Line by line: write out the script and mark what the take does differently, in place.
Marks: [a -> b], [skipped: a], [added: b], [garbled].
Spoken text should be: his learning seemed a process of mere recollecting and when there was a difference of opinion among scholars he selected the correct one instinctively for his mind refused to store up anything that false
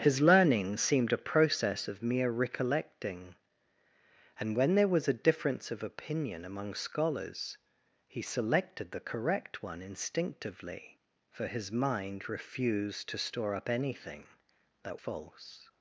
his learning seemed a process of mere recollecting and when there was a difference of opinion among scholars he selected the correct one instinctively for his mind refused to store up anything that false